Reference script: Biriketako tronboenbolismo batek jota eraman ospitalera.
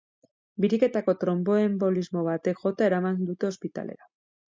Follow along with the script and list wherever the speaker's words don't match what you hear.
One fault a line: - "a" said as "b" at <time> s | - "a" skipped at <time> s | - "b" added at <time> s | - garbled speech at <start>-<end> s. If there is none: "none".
- "dute" added at 3.3 s